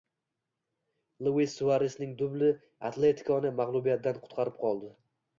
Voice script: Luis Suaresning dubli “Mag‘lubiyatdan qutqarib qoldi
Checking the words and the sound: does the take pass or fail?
fail